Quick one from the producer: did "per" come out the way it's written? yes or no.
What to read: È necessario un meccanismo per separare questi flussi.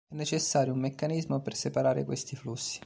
yes